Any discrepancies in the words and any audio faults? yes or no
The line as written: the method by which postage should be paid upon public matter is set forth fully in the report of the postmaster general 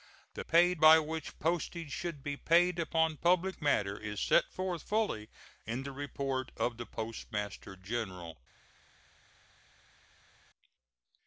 yes